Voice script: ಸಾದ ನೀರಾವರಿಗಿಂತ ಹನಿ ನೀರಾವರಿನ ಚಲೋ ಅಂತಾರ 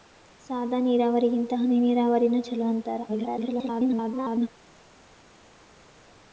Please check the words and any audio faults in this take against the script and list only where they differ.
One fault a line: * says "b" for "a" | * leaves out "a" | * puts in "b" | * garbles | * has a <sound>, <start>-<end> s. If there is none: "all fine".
* garbles